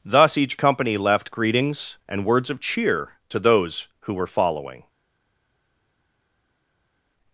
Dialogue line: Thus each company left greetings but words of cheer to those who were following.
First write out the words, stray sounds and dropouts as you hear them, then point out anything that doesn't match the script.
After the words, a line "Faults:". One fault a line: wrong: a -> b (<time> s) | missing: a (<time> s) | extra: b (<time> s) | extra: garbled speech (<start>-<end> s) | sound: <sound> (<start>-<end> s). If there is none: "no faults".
Thus each company left greetings and words of cheer to those who were following.
Faults:
wrong: but -> and (2.1 s)